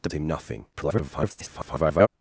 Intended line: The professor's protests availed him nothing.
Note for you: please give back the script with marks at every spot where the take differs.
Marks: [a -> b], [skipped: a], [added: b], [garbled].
The [skipped: professor's protests availed] him nothing. [garbled]